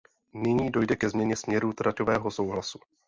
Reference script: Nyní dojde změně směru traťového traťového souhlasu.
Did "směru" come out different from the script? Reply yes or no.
no